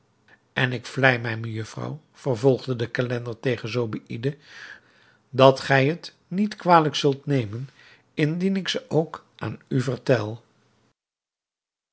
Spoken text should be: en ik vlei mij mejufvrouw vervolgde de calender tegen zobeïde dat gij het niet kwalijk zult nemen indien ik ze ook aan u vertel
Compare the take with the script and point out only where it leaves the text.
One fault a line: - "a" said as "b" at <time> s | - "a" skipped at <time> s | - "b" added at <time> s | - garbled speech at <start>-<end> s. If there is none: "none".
none